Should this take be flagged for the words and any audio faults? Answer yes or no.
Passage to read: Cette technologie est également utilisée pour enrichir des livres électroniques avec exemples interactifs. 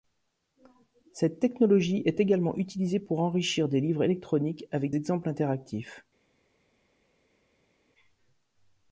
no